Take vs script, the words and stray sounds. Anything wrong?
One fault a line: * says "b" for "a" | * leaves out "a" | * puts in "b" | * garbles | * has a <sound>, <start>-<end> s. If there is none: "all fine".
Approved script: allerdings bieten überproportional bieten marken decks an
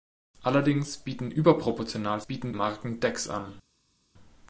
all fine